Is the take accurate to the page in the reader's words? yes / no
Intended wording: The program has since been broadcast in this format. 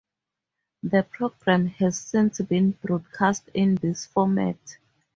yes